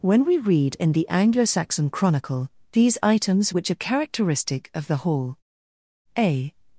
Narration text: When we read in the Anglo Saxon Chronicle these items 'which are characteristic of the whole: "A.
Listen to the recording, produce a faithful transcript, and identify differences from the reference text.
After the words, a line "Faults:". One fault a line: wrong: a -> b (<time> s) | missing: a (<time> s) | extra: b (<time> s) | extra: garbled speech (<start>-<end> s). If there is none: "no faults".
When we read in the Anglo Saxon Chronicle these items 'which are characteristic of the hall: "A.
Faults:
wrong: whole -> hall (5.0 s)